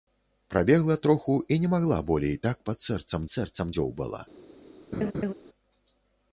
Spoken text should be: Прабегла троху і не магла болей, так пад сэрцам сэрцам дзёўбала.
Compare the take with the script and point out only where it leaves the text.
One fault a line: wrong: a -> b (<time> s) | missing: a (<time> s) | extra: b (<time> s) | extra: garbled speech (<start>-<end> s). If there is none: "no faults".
no faults